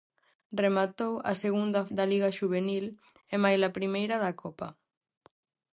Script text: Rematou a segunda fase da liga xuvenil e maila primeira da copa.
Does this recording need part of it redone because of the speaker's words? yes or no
yes